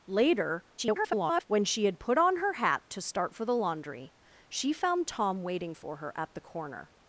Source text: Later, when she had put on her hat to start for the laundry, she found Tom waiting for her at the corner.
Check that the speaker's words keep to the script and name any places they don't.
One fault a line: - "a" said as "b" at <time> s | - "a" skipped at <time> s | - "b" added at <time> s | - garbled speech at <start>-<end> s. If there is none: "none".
- garbled speech at 0.8-1.4 s